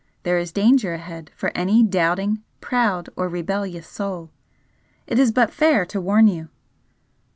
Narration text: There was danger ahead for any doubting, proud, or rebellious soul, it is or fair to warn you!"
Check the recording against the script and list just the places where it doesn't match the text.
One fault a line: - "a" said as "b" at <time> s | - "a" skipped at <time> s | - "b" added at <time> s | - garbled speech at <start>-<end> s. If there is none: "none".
- "was" said as "is" at 0.4 s
- "or" said as "but" at 5.3 s